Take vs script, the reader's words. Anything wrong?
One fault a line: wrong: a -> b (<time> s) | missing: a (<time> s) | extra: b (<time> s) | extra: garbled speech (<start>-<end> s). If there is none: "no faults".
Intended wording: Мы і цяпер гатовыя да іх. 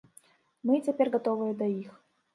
no faults